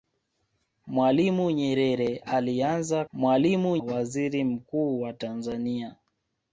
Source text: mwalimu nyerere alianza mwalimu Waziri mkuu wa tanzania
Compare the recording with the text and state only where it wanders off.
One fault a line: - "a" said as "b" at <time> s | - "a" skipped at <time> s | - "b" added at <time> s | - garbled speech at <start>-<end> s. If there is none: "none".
none